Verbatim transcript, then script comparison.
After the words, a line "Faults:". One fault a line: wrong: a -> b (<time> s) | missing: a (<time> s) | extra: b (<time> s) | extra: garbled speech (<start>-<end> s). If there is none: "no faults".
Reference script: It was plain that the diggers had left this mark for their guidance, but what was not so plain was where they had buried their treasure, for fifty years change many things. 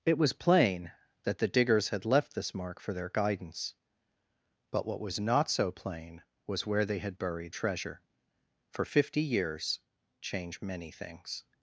It was plain that the diggers had left this mark for their guidance, but what was not so plain was where they had buried treasure, for fifty years change many things.
Faults:
missing: their (7.5 s)